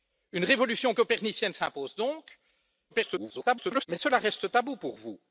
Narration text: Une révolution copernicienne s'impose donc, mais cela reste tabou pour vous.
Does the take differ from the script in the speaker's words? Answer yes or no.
yes